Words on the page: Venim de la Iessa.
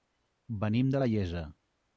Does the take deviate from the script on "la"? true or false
false